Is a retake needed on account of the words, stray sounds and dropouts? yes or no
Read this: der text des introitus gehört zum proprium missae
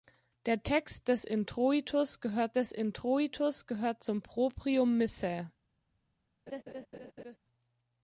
yes